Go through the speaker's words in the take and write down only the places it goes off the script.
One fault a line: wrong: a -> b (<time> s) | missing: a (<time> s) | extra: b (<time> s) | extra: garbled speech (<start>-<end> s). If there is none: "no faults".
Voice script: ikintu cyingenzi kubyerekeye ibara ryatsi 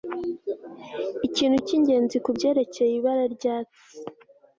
no faults